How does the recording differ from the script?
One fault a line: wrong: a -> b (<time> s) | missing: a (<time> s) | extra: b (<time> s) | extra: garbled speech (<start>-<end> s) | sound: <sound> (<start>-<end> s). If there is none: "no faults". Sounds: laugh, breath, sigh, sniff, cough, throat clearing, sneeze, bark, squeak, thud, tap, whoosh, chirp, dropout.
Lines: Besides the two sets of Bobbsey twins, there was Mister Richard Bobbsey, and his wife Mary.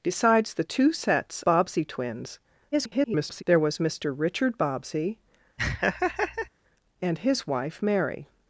missing: of (1.4 s)
extra: garbled speech (2.7-3.4 s)
sound: laugh (5.6-6.5 s)